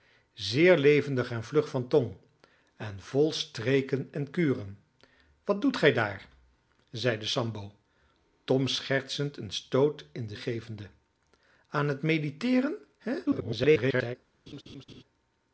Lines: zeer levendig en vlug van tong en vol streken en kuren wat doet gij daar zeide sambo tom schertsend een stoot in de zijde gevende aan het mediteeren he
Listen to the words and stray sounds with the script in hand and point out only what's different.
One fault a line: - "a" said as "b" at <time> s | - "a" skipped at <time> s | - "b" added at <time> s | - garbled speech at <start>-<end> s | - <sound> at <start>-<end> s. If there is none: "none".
- "zijde" skipped at 10.3 s
- garbled speech at 13.3-14.2 s
- laugh at 14.5-15.0 s